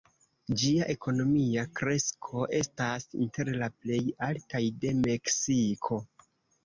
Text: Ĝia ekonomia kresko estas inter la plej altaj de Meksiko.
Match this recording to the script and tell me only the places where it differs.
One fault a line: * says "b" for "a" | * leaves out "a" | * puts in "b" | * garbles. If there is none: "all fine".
all fine